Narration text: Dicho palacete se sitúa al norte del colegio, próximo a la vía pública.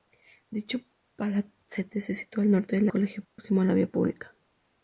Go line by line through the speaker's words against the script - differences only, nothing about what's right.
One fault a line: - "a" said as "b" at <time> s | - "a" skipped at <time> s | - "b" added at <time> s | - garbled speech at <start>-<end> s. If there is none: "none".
none